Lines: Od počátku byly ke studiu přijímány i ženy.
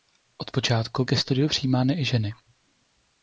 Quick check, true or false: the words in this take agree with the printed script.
false